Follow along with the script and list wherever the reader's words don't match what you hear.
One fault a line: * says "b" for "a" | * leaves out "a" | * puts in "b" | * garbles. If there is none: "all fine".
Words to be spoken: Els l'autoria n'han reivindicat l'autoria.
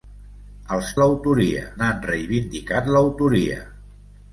all fine